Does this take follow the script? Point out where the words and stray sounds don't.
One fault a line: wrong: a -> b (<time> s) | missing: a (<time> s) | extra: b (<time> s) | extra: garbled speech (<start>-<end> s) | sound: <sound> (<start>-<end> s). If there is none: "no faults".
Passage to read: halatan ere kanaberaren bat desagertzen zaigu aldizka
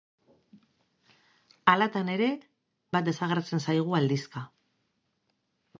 missing: kanaberaren (2.3 s)